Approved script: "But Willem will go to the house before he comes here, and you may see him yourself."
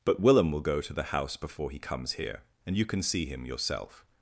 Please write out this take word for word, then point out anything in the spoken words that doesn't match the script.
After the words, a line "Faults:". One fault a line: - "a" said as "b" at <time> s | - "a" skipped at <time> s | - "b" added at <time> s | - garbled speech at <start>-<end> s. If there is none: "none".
"But Willem will go to the house before he comes here, and you can see him yourself."
Faults:
- "may" said as "can" at 2.9 s